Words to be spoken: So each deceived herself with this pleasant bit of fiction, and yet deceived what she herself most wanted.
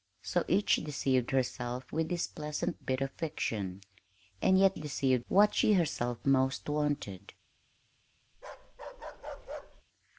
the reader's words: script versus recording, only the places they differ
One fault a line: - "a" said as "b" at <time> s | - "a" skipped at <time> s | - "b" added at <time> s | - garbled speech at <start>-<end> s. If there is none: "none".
none